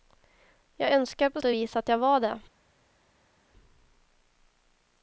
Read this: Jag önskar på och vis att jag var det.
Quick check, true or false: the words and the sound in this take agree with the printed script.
true